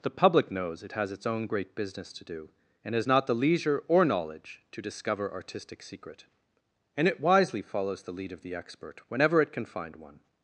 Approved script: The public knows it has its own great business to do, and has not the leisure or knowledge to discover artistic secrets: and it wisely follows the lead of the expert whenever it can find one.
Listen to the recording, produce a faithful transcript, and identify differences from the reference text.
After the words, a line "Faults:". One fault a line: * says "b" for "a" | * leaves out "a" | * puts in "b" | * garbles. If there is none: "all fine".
The public knows it has its own great business to do, and has not the leisure or knowledge to discover artistic secret: and it wisely follows the lead of the expert whenever it can find one.
Faults:
* says "secret" for "secrets"